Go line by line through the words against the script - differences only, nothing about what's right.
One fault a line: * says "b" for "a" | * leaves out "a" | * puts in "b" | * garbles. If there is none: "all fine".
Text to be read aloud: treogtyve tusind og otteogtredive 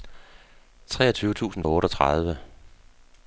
all fine